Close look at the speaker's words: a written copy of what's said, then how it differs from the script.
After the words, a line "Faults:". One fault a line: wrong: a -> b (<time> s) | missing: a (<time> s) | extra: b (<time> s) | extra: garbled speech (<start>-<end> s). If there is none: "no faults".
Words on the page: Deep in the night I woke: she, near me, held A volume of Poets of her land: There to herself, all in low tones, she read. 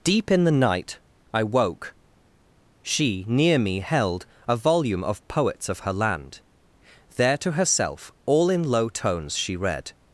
Deep in the night I woke: she, near me, held A volume of Poets of her land: There to herself, all in low tones, she read.
Faults:
no faults